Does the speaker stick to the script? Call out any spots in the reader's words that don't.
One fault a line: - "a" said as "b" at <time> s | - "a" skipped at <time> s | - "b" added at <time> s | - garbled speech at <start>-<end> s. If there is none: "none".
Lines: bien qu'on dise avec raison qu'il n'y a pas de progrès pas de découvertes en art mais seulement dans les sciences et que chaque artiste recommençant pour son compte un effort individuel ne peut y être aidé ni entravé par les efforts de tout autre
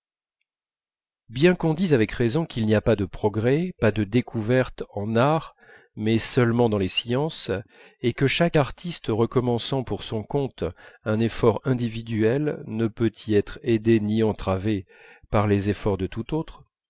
none